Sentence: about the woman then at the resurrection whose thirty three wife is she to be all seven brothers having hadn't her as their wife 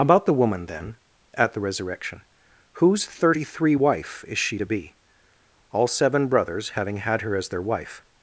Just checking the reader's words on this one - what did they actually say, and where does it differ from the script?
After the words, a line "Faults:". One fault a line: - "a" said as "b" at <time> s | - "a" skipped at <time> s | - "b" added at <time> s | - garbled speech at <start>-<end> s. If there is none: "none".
about the woman then at the resurrection whose thirty three wife is she to be all seven brothers having had her as their wife
Faults:
- "hadn't" said as "had" at 7.0 s